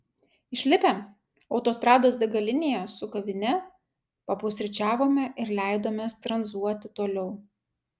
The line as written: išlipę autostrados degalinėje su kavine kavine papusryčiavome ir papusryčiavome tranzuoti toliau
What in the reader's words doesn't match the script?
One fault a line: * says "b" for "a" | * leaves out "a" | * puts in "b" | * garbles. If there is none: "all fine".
* leaves out "kavine"
* says "leidomės" for "papusryčiavome"